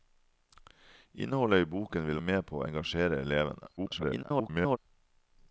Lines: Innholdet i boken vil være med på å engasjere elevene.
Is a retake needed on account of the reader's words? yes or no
yes